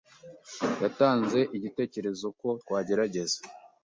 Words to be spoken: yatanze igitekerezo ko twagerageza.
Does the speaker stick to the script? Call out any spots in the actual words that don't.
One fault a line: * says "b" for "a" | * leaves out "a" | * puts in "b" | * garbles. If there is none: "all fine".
all fine